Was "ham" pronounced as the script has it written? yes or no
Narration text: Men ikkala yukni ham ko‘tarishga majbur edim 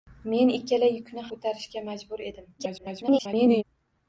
no